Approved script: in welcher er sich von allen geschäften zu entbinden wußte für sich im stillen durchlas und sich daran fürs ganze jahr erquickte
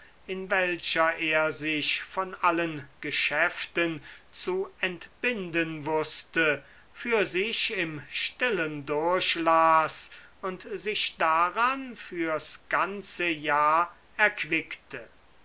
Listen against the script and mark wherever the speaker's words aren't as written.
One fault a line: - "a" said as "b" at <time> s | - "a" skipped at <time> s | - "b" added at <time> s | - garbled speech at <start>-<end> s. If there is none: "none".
none